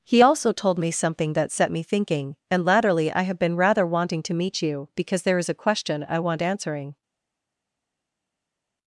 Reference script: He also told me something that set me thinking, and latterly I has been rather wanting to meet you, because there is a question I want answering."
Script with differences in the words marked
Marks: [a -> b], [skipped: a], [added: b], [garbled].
He also told me something that set me thinking, and latterly I [has -> have] been rather wanting to meet you, because there is a question I want answering."